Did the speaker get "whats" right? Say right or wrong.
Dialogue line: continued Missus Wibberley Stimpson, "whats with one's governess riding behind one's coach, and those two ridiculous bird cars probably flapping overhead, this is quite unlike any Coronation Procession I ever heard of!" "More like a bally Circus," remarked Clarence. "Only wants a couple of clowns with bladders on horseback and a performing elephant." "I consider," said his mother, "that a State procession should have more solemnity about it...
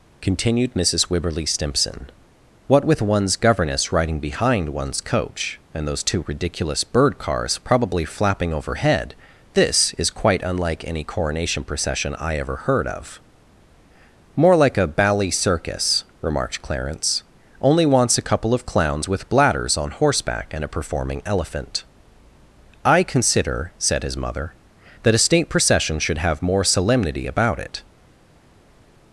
wrong